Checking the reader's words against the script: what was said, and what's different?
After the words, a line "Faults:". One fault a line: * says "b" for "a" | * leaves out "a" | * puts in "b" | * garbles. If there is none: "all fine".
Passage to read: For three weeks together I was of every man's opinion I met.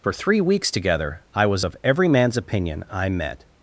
For three weeks together I was of every man's opinion I met.
Faults:
all fine